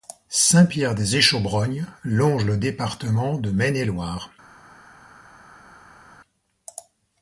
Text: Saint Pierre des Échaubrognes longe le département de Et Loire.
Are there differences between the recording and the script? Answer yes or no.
yes